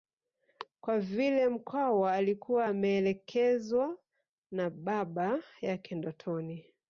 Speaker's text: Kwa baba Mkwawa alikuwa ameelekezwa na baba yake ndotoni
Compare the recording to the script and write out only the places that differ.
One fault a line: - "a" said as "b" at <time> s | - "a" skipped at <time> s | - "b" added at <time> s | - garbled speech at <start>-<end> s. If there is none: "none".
- "baba" said as "vile" at 1.0 s